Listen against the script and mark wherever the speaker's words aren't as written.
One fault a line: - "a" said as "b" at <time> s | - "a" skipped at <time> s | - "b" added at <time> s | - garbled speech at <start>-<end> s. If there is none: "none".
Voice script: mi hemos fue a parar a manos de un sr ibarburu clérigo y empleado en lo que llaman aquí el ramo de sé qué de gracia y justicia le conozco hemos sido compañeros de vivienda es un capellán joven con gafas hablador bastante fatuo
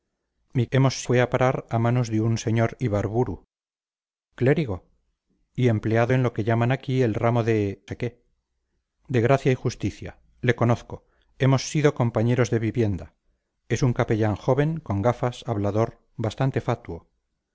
none